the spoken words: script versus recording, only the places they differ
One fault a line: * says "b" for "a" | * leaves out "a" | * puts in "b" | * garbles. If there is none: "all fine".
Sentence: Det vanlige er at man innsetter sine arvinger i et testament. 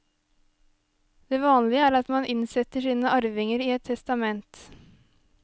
all fine